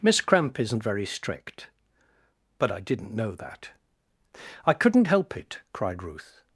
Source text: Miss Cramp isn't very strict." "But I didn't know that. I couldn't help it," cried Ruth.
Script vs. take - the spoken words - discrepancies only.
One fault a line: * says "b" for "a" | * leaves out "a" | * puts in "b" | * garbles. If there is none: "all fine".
all fine